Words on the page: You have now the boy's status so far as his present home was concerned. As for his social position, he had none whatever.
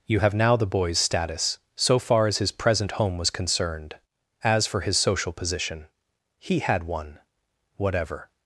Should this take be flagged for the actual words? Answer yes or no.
yes